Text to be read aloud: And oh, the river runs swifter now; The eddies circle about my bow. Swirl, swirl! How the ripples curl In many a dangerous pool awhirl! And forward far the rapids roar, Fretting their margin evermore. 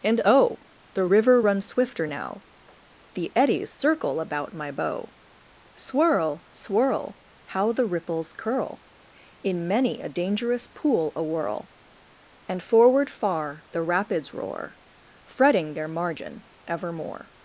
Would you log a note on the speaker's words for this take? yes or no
no